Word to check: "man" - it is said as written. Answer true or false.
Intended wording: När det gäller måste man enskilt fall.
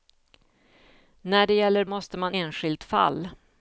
true